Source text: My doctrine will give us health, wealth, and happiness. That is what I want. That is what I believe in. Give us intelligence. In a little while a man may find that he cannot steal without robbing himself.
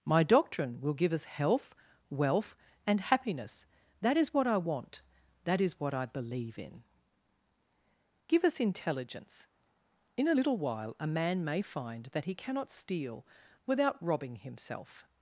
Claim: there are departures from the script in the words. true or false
false